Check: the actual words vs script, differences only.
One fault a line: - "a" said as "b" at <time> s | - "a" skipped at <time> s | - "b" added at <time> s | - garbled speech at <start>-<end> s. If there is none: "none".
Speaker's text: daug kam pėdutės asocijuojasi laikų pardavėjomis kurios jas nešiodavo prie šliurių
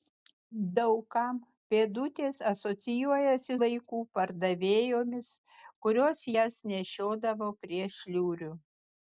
none